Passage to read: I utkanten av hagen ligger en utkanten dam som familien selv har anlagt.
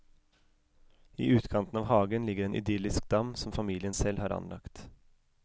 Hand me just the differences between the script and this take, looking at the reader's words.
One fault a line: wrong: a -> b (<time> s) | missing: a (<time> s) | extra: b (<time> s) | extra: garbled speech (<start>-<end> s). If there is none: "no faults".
wrong: utkanten -> idyllisk (2.5 s)